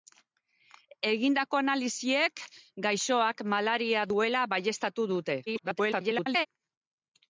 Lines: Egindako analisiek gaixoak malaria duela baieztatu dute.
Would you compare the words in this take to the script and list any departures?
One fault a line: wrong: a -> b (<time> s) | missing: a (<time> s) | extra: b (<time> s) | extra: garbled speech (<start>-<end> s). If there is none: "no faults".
extra: garbled speech (5.5-6.5 s)